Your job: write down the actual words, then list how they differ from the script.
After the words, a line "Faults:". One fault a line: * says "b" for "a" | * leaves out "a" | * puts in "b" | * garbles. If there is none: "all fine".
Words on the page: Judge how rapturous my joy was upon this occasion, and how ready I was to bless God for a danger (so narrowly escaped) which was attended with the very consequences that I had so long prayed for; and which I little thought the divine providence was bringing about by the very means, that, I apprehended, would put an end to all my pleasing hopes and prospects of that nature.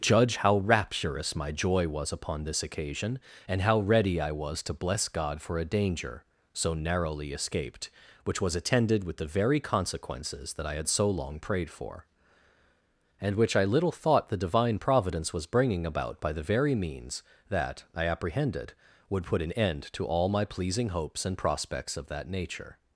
Judge how rapturous my joy was upon this occasion, and how ready I was to bless God for a danger (so narrowly escaped) which was attended with the very consequences that I had so long prayed for; and which I little thought the divine providence was bringing about by the very means, that, I apprehended, would put an end to all my pleasing hopes and prospects of that nature.
Faults:
all fine